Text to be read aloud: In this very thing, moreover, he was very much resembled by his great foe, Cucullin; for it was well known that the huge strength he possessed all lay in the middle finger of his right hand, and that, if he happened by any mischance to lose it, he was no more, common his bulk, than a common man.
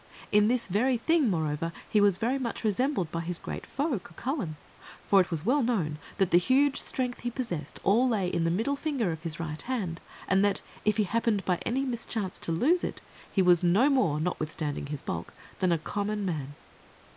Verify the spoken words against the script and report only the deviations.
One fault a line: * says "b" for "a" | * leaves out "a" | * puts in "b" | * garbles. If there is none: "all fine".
* says "notwithstanding" for "common"